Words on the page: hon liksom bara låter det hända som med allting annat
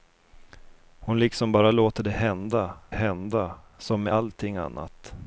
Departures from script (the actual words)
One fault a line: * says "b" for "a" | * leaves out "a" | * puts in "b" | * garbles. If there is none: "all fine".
* puts in "hända"